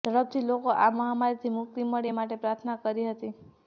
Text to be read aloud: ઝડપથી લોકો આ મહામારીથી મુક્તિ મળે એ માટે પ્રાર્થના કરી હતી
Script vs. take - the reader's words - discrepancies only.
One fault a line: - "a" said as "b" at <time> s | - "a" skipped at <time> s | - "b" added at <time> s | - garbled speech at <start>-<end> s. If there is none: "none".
none